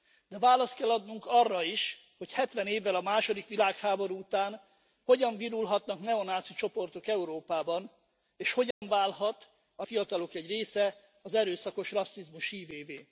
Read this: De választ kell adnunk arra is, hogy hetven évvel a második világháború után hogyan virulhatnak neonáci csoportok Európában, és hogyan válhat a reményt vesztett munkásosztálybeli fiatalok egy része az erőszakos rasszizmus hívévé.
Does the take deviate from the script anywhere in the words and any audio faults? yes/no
yes